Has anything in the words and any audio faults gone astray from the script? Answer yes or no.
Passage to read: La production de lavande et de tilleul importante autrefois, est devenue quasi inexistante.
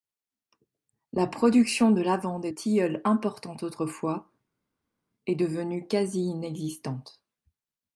yes